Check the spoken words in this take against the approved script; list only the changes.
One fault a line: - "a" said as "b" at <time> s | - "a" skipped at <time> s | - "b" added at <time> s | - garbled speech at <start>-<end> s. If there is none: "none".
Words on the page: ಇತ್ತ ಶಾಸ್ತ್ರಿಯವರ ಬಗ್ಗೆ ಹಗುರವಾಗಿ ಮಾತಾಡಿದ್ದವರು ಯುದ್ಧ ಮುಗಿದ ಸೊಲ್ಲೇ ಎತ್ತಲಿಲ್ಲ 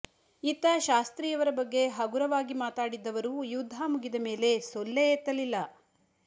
- "ಮೇಲೆ" added at 4.3 s